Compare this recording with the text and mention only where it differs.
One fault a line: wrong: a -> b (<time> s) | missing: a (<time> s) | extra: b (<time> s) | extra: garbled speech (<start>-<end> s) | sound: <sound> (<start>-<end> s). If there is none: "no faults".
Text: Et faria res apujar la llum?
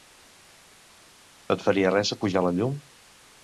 no faults